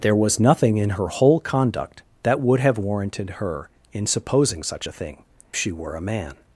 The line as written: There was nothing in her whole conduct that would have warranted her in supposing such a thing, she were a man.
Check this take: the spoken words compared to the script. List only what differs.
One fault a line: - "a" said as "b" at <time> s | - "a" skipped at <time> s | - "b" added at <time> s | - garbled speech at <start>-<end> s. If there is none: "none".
none